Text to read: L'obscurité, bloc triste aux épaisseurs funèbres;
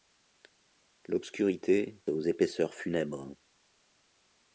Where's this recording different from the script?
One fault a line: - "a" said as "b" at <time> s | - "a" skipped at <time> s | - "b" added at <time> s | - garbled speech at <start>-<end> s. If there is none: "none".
- "bloc triste" skipped at 2.0 s